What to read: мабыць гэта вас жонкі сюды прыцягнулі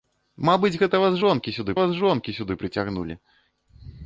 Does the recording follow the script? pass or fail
fail